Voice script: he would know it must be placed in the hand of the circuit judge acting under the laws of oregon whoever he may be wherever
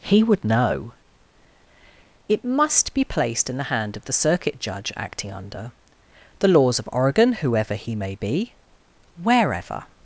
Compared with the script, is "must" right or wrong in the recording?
right